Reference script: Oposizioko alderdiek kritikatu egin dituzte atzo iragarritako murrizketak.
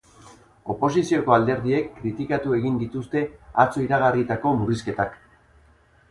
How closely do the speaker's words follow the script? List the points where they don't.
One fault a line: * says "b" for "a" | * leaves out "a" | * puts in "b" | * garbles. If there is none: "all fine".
all fine